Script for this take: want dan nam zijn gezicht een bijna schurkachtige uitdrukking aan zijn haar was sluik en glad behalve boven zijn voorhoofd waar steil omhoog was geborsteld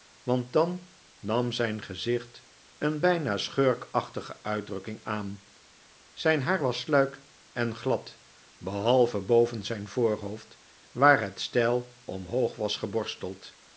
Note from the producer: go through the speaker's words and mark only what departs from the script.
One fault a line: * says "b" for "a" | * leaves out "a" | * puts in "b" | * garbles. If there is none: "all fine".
* puts in "het"